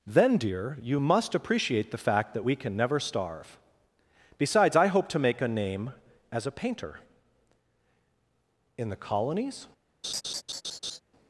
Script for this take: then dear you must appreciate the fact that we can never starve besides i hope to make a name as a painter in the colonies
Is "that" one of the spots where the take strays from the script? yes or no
no